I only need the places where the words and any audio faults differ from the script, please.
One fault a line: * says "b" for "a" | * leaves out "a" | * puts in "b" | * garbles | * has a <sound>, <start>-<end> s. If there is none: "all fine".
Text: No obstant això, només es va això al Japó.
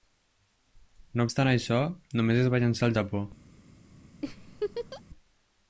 * says "llançar" for "això"
* has a laugh, 4.2-5.0 s